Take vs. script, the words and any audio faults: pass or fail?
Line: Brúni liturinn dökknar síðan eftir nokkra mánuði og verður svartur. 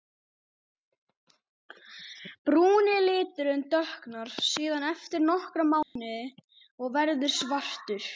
fail